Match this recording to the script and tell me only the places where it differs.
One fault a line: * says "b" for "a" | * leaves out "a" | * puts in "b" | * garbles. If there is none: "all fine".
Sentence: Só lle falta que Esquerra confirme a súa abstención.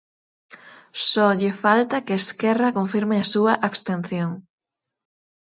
all fine